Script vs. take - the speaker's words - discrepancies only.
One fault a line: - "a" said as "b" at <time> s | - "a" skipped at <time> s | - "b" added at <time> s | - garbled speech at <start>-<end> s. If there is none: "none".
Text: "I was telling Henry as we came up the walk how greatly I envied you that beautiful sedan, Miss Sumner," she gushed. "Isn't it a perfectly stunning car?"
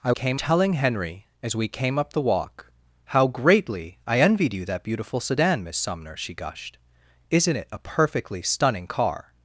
- "was" said as "came" at 0.1 s